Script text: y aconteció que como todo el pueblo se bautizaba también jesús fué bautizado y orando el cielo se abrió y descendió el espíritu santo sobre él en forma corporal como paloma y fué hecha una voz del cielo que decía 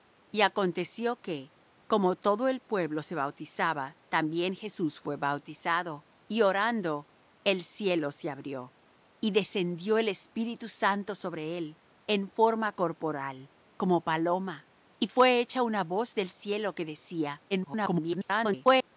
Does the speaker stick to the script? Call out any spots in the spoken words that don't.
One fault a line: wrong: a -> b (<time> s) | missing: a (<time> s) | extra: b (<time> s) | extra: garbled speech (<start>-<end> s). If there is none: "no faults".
extra: garbled speech (17.5-18.9 s)